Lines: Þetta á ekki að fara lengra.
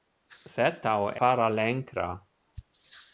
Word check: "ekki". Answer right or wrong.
wrong